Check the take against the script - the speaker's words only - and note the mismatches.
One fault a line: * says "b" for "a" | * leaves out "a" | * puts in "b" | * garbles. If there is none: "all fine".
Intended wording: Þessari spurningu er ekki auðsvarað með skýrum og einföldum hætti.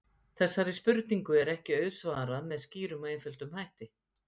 all fine